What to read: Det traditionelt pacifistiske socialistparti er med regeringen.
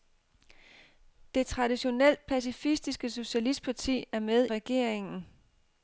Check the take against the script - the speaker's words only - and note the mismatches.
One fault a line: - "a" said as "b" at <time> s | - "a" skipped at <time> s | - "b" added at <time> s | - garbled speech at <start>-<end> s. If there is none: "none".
none